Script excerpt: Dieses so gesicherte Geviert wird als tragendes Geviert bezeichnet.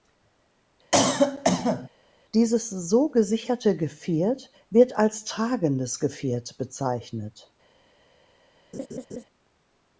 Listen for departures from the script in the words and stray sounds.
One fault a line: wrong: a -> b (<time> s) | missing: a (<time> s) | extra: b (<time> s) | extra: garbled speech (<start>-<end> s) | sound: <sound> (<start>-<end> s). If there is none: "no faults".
sound: cough (0.9-1.9 s)
sound: laugh (8.7-9.2 s)